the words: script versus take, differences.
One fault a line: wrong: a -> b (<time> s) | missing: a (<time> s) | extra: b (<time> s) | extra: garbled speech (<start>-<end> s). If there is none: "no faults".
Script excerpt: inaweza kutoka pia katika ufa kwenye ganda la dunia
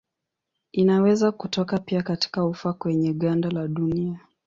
no faults